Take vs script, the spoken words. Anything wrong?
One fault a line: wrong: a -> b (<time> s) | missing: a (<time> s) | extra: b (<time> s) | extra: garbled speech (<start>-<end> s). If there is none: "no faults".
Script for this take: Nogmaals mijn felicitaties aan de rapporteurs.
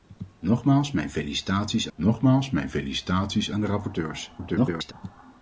extra: nogmaals mijn felicitaties (1.9 s)
extra: garbled speech (4.4-4.9 s)